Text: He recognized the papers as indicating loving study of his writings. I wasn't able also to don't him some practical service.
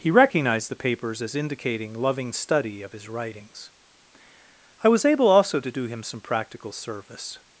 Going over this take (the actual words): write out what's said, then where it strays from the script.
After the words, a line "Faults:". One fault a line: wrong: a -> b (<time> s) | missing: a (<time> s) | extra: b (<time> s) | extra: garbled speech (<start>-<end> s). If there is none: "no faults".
He recognized the papers as indicating loving study of his writings. I was able also to do him some practical service.
Faults:
wrong: wasn't -> was (4.9 s)
wrong: don't -> do (5.7 s)